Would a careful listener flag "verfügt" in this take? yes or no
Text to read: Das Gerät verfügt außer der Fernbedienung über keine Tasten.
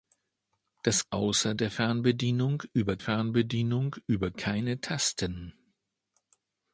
yes